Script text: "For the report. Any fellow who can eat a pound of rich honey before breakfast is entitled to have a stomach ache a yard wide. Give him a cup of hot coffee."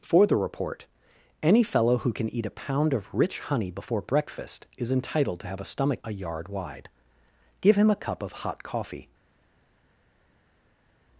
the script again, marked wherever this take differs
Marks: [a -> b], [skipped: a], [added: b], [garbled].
"For the report. Any fellow who can eat a pound of rich honey before breakfast is entitled to have a stomach [skipped: ache] a yard wide. Give him a cup of hot coffee."